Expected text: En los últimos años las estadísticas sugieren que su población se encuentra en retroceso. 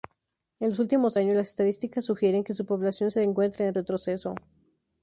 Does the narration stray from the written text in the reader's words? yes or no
no